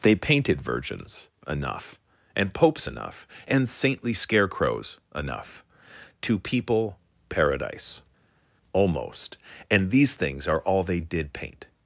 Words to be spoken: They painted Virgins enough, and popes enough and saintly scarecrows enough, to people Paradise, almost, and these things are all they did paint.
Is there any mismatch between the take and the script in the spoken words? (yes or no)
no